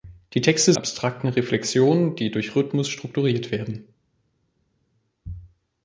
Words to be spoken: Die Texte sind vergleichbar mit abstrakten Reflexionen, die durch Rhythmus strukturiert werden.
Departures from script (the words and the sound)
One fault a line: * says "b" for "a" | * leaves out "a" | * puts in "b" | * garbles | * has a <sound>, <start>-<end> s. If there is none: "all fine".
* leaves out "sind vergleichbar mit"